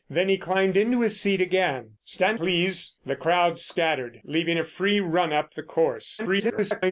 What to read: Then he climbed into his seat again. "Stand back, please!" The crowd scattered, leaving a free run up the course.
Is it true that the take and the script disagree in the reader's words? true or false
true